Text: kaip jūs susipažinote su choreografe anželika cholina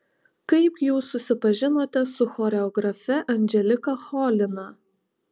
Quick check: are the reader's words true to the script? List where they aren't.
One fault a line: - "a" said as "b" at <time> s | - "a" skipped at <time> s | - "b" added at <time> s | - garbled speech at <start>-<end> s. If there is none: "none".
none